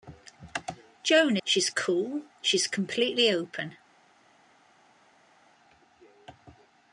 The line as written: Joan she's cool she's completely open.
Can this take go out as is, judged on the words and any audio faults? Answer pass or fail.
pass